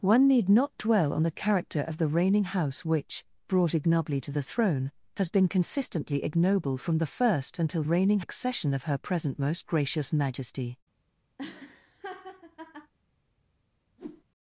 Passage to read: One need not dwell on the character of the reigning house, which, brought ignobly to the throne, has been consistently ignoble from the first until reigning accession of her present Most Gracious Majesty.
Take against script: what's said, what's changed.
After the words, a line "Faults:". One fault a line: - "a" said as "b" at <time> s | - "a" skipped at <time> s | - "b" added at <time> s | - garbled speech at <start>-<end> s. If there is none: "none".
One need not dwell on the character of the reigning house, which, brought ignobly to the throne, has been consistently ignoble from the first until reigning accession of her present Most Gracious Majesty.
Faults:
none